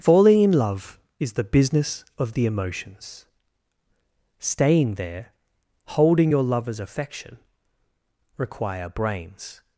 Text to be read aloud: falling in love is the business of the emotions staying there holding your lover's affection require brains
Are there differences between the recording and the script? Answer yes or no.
no